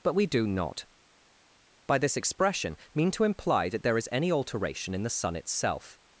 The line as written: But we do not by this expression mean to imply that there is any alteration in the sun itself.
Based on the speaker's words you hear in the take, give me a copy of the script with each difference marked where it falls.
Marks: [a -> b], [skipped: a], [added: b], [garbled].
But we do not by this expression mean to imply that there is any alteration in the sun itself.